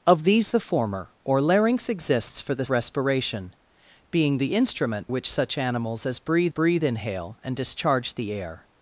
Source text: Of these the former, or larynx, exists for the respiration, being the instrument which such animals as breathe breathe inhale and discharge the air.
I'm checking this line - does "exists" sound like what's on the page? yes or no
yes